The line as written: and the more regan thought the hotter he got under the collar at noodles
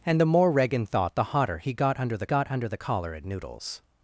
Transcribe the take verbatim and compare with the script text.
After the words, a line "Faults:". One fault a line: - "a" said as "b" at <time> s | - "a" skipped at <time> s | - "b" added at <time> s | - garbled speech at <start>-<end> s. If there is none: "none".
and the more regan thought the hotter he got under the got under the collar at noodles
Faults:
- "got under the" added at 2.2 s